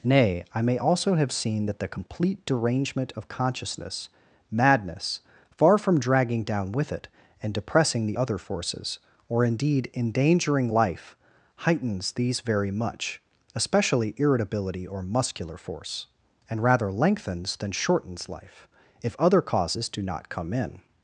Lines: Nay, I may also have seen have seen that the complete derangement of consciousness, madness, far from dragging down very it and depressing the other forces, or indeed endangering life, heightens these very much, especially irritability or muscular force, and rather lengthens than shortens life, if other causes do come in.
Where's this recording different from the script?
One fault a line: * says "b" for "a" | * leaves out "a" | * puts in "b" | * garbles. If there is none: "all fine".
* leaves out "have seen"
* says "with" for "very"
* puts in "not"